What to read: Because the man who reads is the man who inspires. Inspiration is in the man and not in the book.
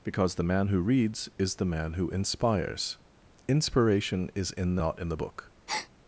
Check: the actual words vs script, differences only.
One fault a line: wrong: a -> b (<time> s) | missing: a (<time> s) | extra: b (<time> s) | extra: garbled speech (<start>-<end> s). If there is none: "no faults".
missing: man and (4.8 s)